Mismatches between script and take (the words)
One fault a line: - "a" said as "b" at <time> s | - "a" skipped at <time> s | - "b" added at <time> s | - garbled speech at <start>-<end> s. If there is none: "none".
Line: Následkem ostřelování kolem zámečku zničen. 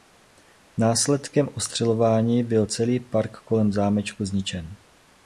- "byl celý park" added at 2.4 s